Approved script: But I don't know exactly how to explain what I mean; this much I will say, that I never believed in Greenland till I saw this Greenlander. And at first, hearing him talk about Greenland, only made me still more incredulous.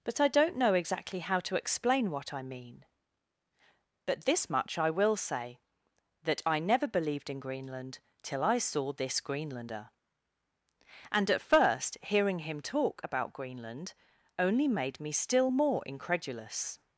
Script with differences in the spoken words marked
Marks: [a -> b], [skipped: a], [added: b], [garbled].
But I don't know exactly how to explain what I mean; [added: but] this much I will say, that I never believed in Greenland till I saw this Greenlander. And at first, hearing him talk about Greenland, only made me still more incredulous.